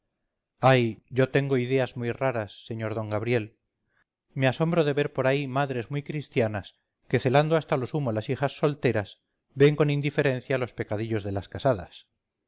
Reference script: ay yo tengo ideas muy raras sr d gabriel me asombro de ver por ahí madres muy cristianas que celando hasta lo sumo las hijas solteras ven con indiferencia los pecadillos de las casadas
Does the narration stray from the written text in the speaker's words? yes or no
no